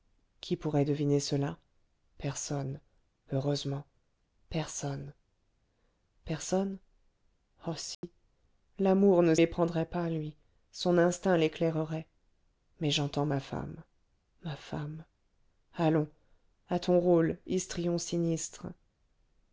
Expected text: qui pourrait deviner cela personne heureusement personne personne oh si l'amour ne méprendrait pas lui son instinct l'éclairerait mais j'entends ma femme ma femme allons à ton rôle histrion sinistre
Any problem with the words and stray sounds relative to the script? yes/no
yes